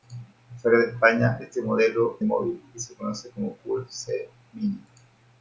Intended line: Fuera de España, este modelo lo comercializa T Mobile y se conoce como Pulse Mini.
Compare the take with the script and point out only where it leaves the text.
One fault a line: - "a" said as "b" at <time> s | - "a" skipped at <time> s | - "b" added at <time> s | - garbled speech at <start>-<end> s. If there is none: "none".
- "lo comercializa T" skipped at 2.2 s